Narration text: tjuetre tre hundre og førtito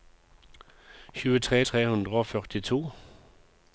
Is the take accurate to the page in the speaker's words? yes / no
yes